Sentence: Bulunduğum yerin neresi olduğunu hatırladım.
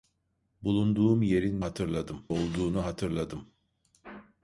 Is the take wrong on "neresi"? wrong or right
wrong